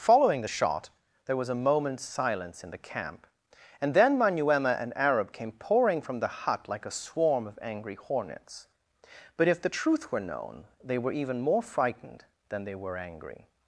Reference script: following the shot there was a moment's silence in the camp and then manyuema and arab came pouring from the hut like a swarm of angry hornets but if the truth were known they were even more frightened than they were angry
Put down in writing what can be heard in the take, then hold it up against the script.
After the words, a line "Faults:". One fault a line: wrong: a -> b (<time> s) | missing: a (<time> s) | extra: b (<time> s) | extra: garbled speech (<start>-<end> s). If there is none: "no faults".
following the shot there was a moment's silence in the camp and then manyuema and arab came pouring from the hut like a swarm of angry hornets but if the truth were known they were even more frightened than they were angry
Faults:
no faults